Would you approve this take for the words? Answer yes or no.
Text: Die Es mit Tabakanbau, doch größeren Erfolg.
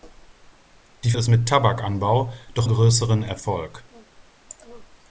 yes